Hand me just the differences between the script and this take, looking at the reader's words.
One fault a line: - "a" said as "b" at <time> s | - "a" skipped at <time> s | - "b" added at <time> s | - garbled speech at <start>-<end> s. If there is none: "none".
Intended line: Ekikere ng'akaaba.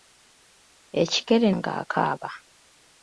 none